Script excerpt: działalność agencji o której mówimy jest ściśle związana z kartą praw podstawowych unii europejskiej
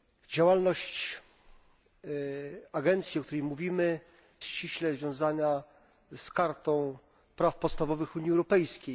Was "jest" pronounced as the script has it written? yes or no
no